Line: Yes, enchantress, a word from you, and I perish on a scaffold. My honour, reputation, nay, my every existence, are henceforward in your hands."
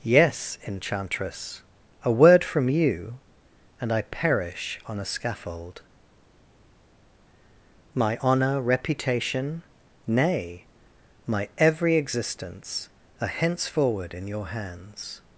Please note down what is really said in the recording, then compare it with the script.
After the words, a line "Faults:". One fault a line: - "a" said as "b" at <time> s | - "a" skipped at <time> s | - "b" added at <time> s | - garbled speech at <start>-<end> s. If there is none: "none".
Yes, enchantress, a word from you, and I perish on a scaffold. My honour, reputation, nay, my every existence, are henceforward in your hands."
Faults:
none